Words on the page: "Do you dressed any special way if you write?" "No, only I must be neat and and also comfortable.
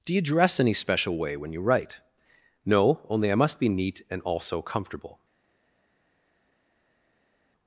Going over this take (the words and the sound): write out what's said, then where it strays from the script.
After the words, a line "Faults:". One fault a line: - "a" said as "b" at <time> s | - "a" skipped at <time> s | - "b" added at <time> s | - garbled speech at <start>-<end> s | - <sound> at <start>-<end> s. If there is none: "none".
"Do you dress any special way when you write?" "No, only I must be neat and also comfortable.
Faults:
- "dressed" said as "dress" at 0.2 s
- "if" said as "when" at 1.4 s
- "and" skipped at 4.2 s